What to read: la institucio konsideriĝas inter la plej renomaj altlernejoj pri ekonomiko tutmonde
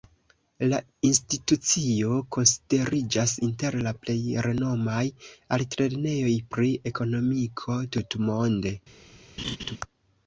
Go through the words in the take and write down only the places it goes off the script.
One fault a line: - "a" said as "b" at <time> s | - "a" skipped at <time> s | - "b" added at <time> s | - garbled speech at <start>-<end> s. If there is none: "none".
none